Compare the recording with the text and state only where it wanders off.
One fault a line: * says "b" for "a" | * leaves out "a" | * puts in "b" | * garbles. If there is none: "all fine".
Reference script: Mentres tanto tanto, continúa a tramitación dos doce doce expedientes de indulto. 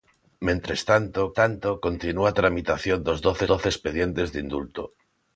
all fine